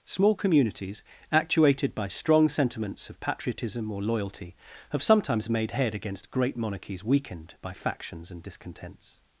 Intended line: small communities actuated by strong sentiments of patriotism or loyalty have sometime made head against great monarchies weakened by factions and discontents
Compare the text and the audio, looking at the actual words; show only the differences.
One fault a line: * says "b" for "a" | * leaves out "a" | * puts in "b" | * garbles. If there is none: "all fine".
* says "sometimes" for "sometime"